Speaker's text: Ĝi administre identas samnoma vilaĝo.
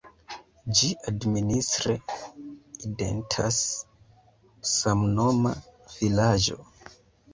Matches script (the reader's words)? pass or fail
pass